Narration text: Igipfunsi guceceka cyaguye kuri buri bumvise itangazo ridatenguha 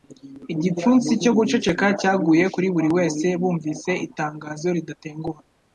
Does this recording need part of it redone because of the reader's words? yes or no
yes